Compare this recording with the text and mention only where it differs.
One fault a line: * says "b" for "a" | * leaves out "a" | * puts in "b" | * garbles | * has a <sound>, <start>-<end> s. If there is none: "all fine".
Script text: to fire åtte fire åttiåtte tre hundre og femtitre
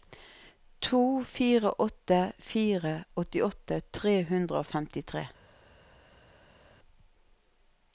all fine